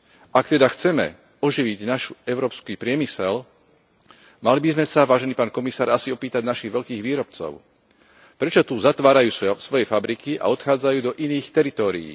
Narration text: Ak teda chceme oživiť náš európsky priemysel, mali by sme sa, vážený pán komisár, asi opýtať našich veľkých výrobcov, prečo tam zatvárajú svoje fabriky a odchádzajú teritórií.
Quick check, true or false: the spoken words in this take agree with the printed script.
false